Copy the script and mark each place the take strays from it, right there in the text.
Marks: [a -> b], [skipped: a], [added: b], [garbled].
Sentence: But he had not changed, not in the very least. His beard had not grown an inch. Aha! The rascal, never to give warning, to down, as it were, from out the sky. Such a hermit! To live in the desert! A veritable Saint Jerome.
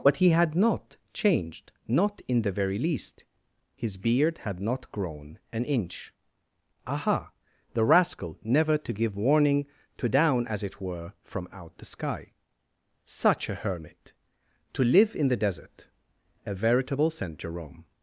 But he had not changed, not in the very least. His beard had not grown an inch. Aha! The rascal, never to give warning, to down, as it were, from out the sky. Such a hermit! To live in the desert! A veritable Saint Jerome.